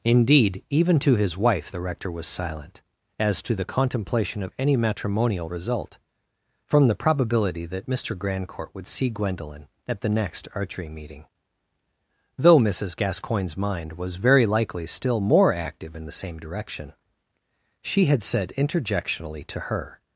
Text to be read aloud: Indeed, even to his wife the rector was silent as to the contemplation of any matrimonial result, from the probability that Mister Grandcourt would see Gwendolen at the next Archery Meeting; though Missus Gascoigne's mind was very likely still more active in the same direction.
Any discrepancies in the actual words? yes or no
yes